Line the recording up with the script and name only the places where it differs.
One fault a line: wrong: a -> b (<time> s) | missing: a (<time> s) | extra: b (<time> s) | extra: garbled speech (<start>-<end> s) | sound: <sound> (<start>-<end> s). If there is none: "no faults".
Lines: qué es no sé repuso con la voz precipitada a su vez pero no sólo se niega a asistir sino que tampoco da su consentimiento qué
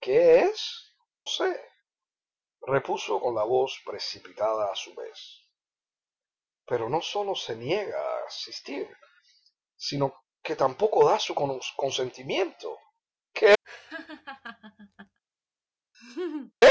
missing: no (0.9 s)
sound: laugh (13.6-15.2 s)
sound: laugh (15.9-16.5 s)